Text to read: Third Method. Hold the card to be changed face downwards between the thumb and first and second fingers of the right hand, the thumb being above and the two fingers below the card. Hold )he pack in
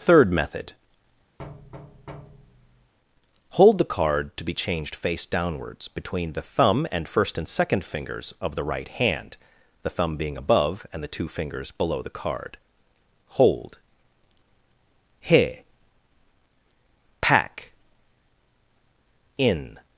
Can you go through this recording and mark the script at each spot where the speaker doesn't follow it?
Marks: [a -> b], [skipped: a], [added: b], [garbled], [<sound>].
Third Method. [thud] Hold the card to be changed face downwards between the thumb and first and second fingers of the right hand, the thumb being above and the two fingers below the card. Hold )he pack in